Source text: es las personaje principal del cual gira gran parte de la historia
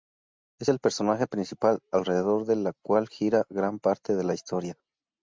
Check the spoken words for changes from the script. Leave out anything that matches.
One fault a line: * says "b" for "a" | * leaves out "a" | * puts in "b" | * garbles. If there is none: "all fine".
* says "el" for "las"
* puts in "alrededor"